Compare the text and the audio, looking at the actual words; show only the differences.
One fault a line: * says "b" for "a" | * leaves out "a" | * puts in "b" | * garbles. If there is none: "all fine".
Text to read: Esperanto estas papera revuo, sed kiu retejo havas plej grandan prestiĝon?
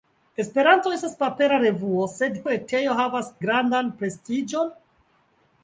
* leaves out "kiu"
* leaves out "plej"